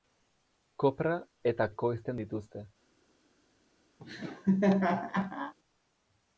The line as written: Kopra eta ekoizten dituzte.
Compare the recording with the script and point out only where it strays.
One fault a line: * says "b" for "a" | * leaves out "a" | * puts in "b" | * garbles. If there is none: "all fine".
all fine